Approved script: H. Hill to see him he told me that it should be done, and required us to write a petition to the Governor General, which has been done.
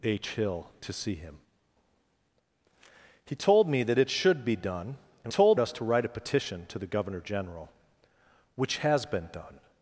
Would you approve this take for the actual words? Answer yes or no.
no